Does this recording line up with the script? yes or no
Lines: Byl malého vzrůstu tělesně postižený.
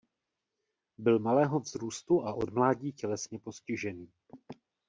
no